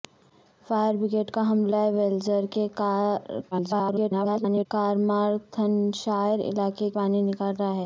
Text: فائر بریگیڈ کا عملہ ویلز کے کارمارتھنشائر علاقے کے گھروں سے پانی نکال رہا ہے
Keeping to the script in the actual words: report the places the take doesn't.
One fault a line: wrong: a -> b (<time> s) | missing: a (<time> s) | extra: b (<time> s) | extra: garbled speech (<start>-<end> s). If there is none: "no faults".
extra: garbled speech (3.5-4.7 s)
missing: کے گھروں سے (6.9 s)